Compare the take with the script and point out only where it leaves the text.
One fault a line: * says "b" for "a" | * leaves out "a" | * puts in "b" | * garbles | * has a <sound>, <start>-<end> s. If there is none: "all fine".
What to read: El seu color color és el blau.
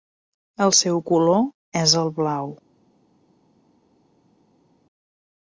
* leaves out "color"